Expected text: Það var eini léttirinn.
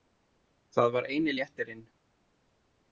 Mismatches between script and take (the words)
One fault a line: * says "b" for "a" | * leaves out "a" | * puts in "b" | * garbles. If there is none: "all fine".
all fine